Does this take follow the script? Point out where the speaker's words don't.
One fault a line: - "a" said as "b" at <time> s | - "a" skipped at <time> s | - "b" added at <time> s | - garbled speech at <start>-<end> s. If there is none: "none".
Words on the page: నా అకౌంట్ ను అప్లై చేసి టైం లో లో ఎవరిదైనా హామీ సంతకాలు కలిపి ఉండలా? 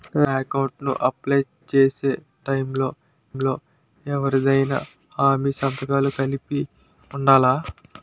none